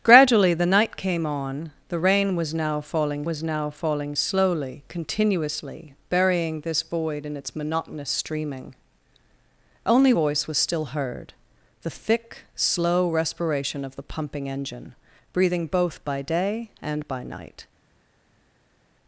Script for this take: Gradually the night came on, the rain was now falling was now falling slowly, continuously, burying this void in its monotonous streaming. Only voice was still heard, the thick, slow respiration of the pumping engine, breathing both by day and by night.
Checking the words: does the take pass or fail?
pass